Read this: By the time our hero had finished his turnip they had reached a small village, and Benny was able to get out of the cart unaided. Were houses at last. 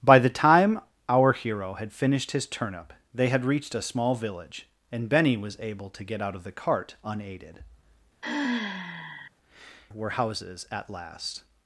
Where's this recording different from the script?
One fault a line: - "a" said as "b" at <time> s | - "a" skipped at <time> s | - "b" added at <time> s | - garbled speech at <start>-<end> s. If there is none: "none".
none